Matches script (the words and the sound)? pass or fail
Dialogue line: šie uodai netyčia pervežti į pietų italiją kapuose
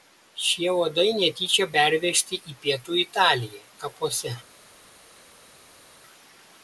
pass